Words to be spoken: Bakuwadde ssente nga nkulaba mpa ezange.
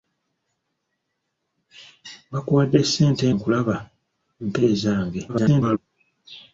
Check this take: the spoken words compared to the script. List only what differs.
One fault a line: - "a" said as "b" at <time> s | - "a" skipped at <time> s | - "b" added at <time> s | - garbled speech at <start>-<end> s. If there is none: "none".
- "nga" skipped at 3.2 s
- garbled speech at 5.3-5.8 s